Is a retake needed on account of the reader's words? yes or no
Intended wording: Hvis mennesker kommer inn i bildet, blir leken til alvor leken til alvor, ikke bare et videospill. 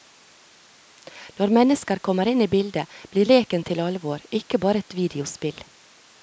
yes